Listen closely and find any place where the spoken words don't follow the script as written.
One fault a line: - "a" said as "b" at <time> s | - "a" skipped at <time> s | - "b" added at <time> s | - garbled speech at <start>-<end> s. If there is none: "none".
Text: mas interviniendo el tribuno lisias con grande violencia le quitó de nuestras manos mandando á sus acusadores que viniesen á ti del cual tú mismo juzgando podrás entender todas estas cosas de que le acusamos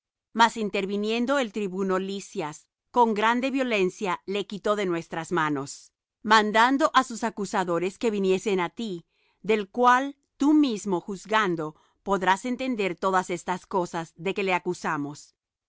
none